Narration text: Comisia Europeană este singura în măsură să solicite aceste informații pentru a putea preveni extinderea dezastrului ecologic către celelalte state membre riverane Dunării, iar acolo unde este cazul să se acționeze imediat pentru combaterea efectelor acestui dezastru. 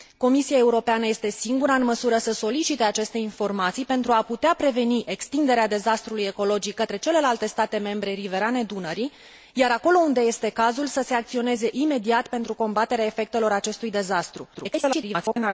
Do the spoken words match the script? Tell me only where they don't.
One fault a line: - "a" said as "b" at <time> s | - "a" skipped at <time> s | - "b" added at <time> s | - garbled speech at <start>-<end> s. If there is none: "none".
- garbled speech at 14.5-15.5 s